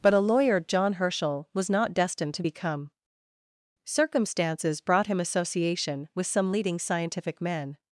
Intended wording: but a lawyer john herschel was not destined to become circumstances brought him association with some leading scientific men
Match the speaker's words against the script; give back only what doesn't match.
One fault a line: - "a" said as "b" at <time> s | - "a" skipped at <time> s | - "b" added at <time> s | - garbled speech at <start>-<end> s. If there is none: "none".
none